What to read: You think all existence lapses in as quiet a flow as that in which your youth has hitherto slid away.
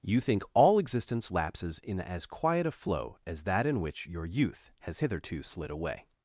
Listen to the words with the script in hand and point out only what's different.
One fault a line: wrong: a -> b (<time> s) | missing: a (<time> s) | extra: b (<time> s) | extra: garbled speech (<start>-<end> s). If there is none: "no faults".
no faults